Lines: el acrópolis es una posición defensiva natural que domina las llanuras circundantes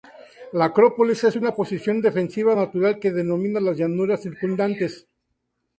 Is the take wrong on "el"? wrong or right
wrong